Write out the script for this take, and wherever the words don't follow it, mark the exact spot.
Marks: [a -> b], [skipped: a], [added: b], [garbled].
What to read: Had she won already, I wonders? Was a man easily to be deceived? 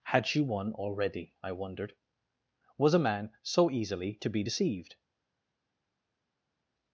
Had she won already, I [wonders? -> wondered] Was a man [added: so] easily to be deceived?